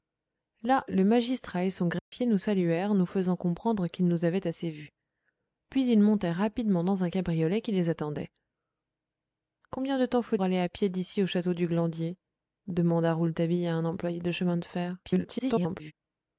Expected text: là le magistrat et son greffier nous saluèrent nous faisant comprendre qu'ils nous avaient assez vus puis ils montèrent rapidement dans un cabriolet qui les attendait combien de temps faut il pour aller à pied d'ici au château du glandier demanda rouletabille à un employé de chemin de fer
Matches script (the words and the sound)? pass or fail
fail